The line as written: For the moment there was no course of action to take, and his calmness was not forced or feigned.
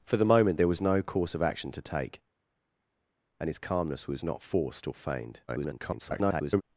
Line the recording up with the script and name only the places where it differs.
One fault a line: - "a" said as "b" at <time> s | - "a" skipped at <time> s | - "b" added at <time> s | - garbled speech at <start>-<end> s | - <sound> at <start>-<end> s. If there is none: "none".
- garbled speech at 5.5-6.6 s